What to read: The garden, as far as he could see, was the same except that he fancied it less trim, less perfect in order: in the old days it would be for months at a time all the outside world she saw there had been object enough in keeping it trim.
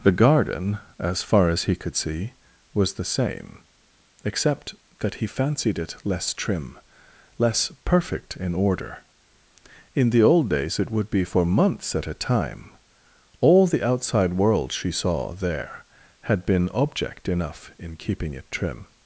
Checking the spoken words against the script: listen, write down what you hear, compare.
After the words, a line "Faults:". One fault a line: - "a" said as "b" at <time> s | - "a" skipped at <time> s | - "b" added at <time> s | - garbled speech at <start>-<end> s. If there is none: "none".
The garden, as far as he could see, was the same except that he fancied it less trim, less perfect in order: in the old days it would be for months at a time all the outside world she saw there had been object enough in keeping it trim.
Faults:
none